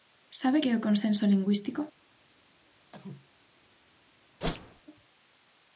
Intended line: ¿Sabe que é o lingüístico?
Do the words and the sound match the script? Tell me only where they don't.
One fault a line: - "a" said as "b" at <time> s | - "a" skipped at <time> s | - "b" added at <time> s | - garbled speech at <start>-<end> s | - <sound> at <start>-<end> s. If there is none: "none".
- "consenso" added at 0.9 s
- cough at 2.9-3.3 s
- whoosh at 4.4-4.8 s